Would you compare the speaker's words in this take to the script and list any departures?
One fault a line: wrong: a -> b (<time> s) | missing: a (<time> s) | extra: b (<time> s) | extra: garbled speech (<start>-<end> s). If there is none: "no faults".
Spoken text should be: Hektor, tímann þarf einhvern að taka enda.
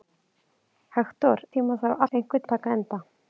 no faults